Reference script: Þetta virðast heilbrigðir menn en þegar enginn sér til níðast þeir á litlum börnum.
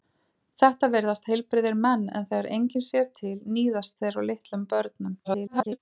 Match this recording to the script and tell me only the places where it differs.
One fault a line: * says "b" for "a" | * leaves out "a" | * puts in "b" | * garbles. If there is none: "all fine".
* garbles